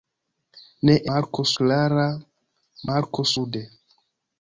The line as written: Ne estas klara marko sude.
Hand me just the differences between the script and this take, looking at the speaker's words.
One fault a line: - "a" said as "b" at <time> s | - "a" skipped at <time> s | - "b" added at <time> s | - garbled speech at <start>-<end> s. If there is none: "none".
- "estas" said as "marko" at 1.1 s